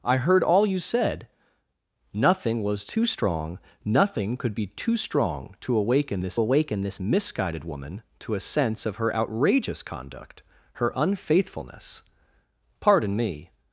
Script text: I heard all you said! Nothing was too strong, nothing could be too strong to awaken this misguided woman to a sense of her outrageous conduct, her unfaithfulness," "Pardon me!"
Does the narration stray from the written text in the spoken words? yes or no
yes